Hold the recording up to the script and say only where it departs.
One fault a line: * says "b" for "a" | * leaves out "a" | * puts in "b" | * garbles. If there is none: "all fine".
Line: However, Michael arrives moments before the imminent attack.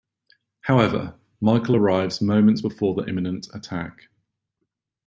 all fine